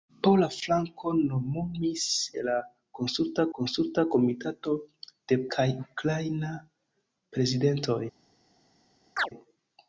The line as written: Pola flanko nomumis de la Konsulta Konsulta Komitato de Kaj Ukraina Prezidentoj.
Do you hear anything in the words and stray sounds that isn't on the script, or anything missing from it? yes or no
yes